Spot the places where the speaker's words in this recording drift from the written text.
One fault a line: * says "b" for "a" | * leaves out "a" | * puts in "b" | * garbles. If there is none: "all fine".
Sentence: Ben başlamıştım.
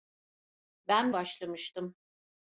all fine